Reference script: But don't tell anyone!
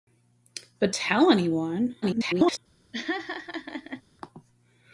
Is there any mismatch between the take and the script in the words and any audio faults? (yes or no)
yes